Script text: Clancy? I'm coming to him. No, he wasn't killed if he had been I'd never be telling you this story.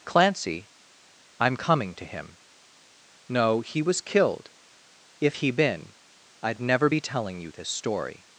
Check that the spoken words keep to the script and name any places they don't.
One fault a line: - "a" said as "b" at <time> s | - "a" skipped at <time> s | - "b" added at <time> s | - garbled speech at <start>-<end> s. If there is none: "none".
- "wasn't" said as "was" at 3.8 s
- "had" skipped at 5.5 s